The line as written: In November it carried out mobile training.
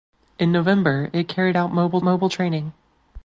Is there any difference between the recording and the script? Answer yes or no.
yes